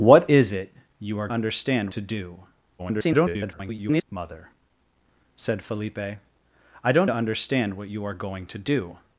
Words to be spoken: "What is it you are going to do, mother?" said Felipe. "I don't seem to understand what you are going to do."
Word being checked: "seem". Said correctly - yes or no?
no